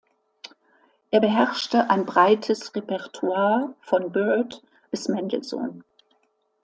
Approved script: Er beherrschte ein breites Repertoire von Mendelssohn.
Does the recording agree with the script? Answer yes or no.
no